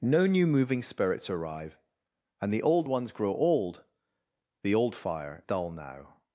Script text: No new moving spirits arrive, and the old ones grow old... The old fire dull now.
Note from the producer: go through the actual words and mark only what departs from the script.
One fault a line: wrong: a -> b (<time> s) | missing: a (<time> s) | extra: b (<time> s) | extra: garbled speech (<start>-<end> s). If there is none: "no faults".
no faults